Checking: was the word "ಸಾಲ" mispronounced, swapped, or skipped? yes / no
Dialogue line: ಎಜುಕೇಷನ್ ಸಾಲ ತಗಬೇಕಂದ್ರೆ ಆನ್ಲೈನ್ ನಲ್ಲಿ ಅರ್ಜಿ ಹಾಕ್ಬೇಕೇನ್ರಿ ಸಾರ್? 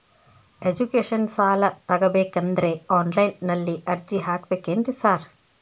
no